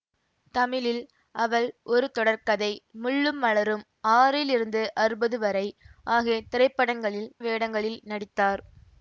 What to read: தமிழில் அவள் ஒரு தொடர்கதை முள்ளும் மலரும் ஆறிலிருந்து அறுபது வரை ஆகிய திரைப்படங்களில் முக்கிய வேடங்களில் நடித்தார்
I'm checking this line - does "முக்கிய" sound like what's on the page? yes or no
no